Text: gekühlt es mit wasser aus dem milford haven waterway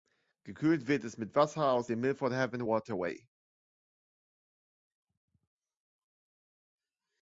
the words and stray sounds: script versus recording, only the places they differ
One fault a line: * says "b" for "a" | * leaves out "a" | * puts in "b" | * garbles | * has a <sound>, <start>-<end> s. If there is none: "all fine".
* puts in "wird"